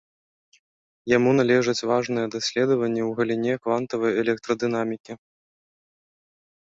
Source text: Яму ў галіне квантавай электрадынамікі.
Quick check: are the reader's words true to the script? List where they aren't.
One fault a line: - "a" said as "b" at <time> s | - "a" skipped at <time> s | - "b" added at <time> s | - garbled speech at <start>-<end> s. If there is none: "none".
- "належаць важныя даследаванні" added at 1.4 s